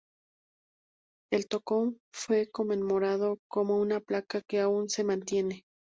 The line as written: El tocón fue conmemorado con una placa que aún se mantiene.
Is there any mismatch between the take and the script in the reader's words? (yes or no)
no